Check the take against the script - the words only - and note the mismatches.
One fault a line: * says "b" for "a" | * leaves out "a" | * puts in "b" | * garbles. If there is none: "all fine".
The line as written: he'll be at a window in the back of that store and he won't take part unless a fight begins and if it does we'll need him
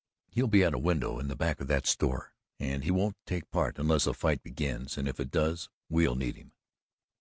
all fine